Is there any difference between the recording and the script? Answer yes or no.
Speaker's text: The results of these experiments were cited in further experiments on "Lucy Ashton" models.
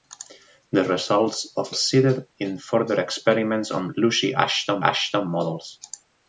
yes